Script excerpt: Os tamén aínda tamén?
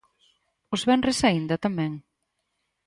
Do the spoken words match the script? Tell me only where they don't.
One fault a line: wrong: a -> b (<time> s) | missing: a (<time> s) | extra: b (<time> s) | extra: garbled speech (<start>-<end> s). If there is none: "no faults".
wrong: tamén -> venres (0.9 s)